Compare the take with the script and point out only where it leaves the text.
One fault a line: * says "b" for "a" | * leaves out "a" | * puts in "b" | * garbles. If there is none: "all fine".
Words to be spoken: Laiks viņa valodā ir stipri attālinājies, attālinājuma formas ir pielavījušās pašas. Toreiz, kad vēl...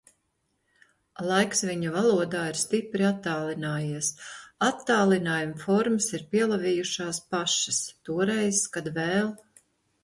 all fine